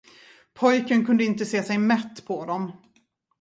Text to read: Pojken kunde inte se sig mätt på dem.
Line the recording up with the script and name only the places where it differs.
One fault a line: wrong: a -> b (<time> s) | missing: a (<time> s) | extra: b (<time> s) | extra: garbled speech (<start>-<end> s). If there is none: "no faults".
no faults